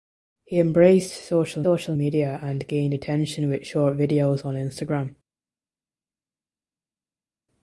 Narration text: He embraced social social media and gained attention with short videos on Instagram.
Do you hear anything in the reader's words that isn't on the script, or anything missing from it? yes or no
no